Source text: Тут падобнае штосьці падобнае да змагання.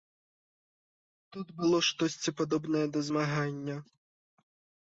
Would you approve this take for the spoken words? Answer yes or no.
no